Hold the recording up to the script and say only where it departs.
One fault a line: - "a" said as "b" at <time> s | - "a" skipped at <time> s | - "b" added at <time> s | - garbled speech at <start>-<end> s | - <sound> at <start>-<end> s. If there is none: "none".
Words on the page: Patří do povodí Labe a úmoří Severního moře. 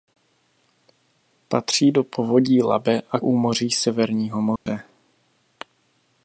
- dropout at 4.6-4.7 s